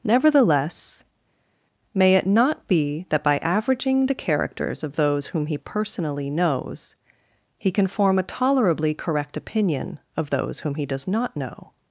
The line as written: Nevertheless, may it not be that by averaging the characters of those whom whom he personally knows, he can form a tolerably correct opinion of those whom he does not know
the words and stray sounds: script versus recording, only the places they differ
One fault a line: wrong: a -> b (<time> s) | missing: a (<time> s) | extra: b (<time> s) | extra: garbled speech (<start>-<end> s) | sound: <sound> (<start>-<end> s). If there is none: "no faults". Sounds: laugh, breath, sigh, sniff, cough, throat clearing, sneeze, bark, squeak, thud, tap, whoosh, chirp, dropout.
missing: whom (5.5 s)